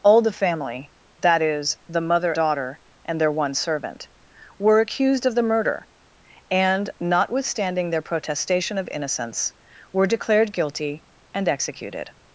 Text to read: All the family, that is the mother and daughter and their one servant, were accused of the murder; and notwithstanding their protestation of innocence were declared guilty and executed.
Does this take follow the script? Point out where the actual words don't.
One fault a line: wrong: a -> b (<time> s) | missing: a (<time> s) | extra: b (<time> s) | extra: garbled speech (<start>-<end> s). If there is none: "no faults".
missing: and (2.3 s)